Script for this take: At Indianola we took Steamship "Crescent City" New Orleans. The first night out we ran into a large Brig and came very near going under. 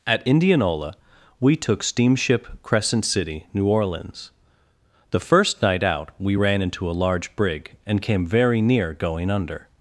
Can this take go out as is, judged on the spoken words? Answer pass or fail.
pass